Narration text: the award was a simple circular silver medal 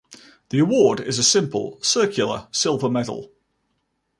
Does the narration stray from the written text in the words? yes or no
yes